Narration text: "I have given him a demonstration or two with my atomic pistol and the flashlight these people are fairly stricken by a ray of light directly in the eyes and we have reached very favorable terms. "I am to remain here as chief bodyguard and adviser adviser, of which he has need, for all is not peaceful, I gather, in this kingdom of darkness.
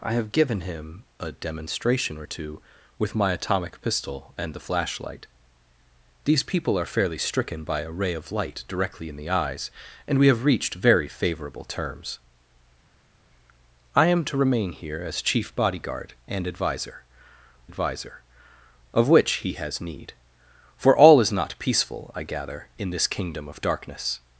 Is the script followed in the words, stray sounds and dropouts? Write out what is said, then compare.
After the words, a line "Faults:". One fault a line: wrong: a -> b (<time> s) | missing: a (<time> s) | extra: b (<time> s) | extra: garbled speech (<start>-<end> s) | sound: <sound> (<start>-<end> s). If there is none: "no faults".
"I have given him a demonstration or two with my atomic pistol and the flashlight these people are fairly stricken by a ray of light directly in the eyes and we have reached very favorable terms. "I am to remain here as chief bodyguard and adviser adviser, of which he has need, for all is not peaceful, I gather, in this kingdom of darkness.
Faults:
no faults